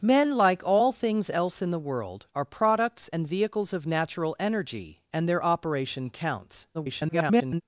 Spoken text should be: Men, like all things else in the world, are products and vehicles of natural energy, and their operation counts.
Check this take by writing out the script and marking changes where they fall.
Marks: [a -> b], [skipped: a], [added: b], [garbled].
Men, like all things else in the world, are products and vehicles of natural energy, and their operation counts. [garbled]